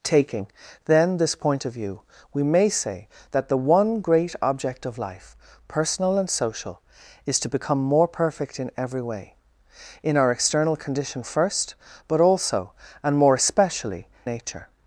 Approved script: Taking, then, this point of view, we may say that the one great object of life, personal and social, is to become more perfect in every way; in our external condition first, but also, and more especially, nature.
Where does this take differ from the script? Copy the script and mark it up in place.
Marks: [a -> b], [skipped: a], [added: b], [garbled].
Taking, then, this point of view, we may say that the one great object of life, personal and social, is to become more perfect in every way; in our external condition first, but also, and more especially, nature.